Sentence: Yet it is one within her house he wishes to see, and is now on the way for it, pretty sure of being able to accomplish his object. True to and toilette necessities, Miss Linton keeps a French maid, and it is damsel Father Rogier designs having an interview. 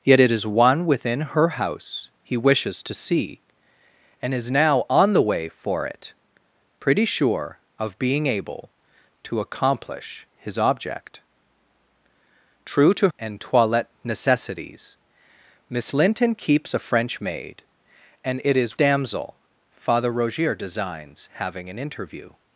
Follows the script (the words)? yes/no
yes